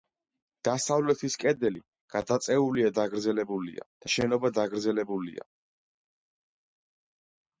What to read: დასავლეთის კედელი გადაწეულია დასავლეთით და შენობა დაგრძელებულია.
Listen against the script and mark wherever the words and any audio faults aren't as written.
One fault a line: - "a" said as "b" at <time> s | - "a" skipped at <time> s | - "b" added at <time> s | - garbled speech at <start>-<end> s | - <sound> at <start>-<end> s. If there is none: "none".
- "დასავლეთით" said as "დაგრძელებულია" at 3.0 s